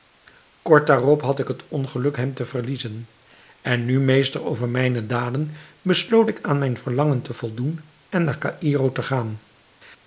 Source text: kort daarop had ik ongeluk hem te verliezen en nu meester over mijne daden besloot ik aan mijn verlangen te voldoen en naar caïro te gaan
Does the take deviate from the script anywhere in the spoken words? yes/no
yes